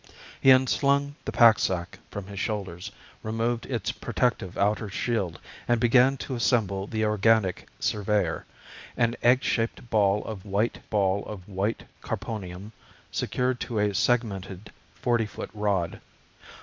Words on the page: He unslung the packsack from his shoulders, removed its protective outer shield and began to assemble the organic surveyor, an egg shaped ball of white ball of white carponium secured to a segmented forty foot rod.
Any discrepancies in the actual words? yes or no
no